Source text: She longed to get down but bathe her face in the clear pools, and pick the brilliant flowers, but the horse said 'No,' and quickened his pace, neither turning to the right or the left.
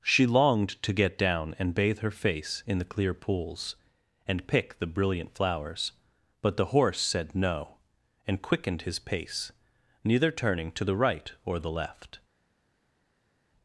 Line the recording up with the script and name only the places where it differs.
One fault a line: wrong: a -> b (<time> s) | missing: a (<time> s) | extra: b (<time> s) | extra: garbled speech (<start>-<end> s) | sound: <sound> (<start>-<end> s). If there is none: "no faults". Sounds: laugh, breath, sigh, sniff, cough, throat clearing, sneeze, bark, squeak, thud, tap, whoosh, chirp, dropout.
wrong: but -> and (1.6 s)